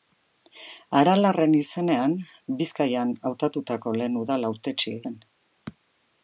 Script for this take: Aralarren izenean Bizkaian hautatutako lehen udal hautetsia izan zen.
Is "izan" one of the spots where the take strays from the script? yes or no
yes